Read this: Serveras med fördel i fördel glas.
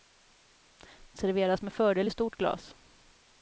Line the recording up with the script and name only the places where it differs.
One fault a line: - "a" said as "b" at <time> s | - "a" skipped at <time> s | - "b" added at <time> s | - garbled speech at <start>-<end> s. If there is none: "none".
- "fördel" said as "stort" at 2.1 s